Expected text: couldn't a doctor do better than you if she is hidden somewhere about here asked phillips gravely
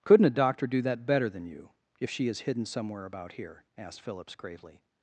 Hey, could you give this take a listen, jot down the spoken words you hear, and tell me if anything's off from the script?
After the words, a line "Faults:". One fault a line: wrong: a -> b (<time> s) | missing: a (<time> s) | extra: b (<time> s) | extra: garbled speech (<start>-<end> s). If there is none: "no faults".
couldn't a doctor do that better than you if she is hidden somewhere about here asked phillips gravely
Faults:
extra: that (0.8 s)